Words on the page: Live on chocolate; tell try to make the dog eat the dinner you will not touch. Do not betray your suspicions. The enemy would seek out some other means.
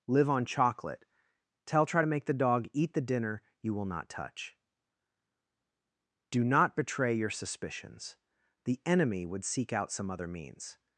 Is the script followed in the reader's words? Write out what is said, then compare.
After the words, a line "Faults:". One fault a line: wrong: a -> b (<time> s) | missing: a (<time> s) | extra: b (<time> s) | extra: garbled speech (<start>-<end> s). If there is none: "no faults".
Live on chocolate; tell try to make the dog eat the dinner you will not touch. Do not betray your suspicions. The enemy would seek out some other means.
Faults:
no faults